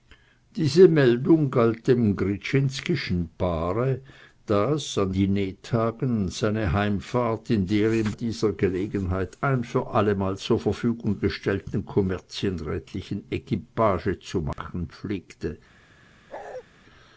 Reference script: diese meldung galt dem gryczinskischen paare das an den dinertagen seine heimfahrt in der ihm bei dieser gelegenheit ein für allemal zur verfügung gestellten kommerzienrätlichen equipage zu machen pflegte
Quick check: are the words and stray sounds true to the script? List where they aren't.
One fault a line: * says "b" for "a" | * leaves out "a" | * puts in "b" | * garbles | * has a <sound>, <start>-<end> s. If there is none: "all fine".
* leaves out "den"
* leaves out "bei"
* has a dropout, 14.5-14.6 s
* has a bark, 16.3-16.6 s